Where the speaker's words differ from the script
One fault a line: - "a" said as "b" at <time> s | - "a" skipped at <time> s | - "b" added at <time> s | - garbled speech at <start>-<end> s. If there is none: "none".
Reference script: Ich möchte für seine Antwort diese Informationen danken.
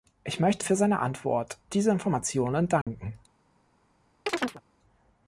none